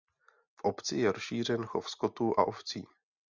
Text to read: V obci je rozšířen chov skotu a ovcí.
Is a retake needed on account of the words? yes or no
no